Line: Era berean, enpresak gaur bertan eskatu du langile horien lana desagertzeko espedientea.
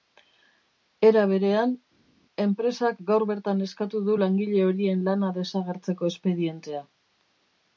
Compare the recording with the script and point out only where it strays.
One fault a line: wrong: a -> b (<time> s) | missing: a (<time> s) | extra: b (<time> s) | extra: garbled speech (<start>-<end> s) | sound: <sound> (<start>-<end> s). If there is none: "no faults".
no faults